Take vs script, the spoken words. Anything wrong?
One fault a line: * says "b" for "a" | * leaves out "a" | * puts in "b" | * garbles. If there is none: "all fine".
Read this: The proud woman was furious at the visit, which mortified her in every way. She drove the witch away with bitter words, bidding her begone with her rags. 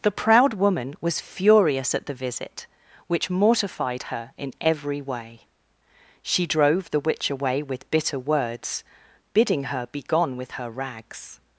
all fine